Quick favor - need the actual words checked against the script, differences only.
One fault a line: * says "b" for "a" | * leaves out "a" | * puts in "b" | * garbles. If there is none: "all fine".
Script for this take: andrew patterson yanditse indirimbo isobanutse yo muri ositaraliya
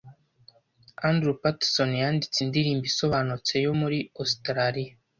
all fine